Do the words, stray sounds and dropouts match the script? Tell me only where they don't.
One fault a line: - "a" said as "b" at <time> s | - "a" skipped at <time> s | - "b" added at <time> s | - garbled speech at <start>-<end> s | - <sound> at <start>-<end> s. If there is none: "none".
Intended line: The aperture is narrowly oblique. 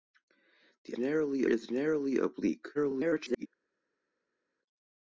- "aperture" said as "narrowly" at 1.0 s
- garbled speech at 2.7-3.5 s